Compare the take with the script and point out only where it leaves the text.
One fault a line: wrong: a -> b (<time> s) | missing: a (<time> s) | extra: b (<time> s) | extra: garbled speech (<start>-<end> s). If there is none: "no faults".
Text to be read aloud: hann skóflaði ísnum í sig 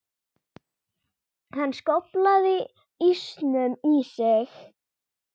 no faults